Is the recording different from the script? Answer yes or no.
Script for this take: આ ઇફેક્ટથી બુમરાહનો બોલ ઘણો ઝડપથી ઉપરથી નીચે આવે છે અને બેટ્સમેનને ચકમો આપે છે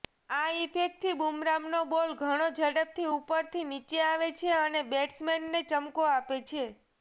no